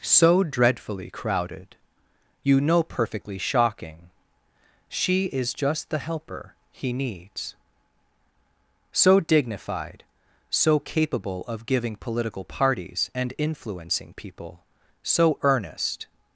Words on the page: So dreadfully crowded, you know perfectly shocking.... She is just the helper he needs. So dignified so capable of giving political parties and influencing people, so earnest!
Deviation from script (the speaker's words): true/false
false